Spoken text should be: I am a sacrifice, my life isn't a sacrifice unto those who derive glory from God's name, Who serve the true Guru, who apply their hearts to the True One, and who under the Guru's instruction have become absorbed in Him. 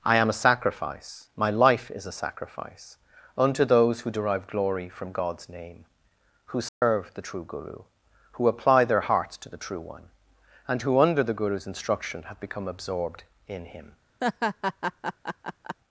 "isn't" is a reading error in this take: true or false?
true